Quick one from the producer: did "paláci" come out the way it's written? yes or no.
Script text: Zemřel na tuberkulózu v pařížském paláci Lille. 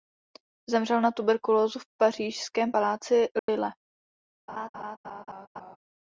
yes